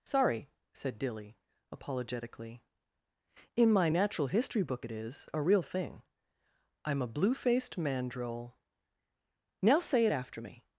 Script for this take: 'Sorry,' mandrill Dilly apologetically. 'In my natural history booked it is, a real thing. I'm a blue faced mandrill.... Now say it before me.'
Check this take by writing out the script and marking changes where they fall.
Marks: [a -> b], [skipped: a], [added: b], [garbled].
'Sorry,' [mandrill -> said] Dilly apologetically. 'In my natural history [booked -> book] it is, a real thing. I'm a blue faced mandrill.... Now say it [before -> after] me.'